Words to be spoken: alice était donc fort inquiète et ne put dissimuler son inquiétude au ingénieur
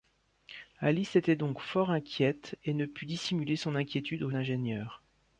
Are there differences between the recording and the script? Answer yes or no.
no